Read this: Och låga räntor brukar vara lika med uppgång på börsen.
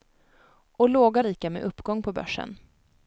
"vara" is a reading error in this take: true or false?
true